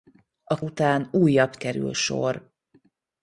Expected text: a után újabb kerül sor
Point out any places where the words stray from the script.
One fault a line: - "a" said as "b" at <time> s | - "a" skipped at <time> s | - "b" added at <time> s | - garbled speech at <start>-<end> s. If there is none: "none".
none